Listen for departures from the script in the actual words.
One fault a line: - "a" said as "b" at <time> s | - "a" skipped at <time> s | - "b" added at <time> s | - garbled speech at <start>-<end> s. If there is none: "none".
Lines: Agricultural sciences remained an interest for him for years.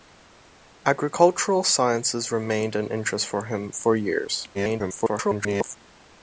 - garbled speech at 4.5-5.8 s